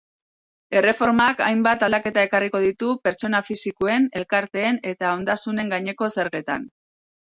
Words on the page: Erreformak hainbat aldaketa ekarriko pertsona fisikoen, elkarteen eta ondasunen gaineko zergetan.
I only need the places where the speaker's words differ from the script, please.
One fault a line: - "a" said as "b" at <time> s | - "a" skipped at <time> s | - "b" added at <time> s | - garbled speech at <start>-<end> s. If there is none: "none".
- "ditu" added at 2.7 s